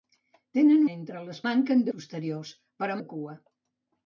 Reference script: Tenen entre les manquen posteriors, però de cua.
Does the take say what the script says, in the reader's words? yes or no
yes